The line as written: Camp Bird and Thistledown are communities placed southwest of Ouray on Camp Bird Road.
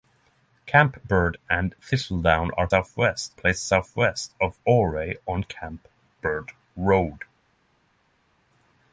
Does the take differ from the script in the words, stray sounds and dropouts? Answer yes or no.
yes